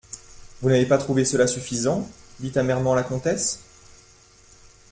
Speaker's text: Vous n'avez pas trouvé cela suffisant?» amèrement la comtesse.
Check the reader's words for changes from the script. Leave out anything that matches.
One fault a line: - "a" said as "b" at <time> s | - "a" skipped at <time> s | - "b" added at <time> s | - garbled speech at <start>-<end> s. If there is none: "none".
- "dit" added at 2.4 s